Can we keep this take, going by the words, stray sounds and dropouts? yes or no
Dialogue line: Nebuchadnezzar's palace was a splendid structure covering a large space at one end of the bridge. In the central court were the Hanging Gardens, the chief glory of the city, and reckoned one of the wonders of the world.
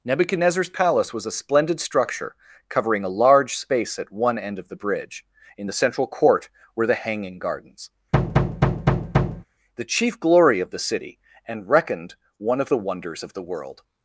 no